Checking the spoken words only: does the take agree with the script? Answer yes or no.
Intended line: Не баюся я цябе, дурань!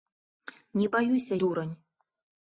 no